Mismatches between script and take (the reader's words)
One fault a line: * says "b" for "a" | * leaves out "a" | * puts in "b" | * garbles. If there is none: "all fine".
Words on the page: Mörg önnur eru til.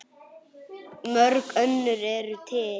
all fine